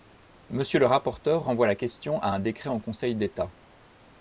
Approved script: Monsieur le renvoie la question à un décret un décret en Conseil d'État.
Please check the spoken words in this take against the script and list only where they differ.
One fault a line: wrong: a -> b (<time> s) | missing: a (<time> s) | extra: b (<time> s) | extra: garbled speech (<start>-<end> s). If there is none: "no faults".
extra: rapporteur (0.9 s)
missing: un décret (2.7 s)